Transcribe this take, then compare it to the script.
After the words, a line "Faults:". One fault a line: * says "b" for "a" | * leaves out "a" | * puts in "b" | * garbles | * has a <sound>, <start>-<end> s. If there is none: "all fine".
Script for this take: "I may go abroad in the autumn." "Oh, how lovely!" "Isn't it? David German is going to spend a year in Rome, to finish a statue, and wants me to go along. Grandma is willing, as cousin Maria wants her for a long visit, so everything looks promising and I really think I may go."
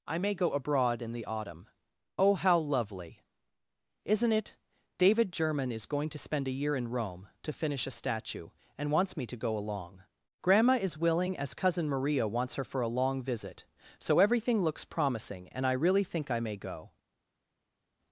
"I may go abroad in the autumn." "Oh, how lovely!" "Isn't it? David German is going to spend a year in Rome, to finish a statue, and wants me to go along. Grandma is willing, as cousin Maria wants her for a long visit, so everything looks promising and I really think I may go."
Faults:
all fine